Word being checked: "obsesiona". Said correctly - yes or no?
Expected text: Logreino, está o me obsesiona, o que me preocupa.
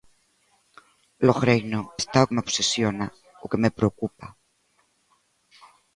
yes